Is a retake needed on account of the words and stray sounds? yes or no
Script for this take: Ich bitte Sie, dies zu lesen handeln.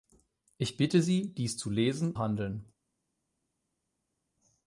no